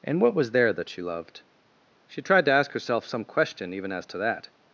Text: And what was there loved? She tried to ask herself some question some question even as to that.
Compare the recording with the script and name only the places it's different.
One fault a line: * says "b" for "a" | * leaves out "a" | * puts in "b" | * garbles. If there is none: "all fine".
* puts in "that she"
* leaves out "some question"